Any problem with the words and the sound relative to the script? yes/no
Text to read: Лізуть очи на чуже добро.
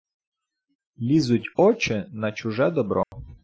yes